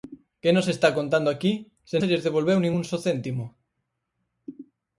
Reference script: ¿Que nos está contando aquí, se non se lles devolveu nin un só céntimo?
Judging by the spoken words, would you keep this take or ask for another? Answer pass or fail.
fail